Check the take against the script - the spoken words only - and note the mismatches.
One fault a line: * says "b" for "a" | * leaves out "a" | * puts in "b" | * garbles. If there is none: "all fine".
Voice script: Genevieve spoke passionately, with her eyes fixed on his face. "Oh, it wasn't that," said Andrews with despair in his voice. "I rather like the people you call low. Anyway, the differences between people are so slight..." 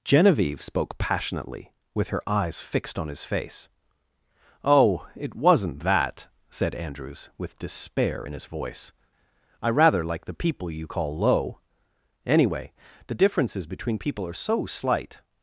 all fine